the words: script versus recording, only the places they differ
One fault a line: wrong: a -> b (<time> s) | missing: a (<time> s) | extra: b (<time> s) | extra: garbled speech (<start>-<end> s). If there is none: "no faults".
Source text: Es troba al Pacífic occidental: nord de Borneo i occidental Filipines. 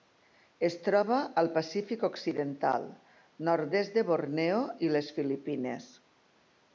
extra: est (3.8 s)
wrong: occidental -> les (5.0 s)